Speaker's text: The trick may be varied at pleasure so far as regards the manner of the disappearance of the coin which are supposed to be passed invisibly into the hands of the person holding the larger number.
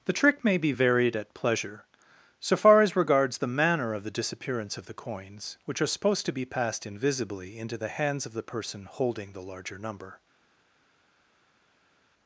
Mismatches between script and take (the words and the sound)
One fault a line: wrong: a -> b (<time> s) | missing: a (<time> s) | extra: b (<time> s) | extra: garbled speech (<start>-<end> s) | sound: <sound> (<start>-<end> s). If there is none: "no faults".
wrong: coin -> coins (4.9 s)